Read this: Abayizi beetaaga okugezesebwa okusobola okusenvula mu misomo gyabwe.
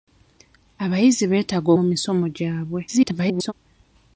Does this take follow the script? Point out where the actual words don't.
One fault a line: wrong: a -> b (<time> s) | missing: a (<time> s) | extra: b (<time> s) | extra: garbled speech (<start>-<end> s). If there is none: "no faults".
missing: okugezesebwa okusobola okusenvula (1.7 s)
extra: garbled speech (2.9-3.5 s)